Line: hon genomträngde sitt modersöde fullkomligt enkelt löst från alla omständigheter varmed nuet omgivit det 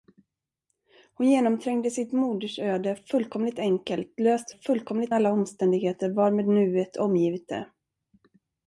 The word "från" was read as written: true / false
false